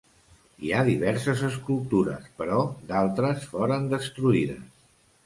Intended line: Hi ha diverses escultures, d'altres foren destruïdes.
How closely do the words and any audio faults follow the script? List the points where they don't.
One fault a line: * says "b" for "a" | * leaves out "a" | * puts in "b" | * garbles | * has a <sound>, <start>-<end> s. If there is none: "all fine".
* puts in "però"